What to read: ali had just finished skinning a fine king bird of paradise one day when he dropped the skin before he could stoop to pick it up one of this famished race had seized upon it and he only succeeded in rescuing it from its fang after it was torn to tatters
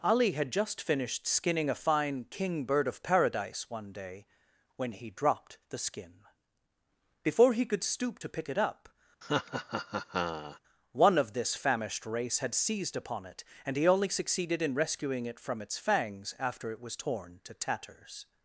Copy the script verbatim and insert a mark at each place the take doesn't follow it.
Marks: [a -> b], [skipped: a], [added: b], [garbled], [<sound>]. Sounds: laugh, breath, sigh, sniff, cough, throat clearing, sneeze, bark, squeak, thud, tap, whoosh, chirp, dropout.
ali had just finished skinning a fine king bird of paradise one day when he dropped the skin before he could stoop to pick it up [laugh] one of this famished race had seized upon it and he only succeeded in rescuing it from its [fang -> fangs] after it was torn to tatters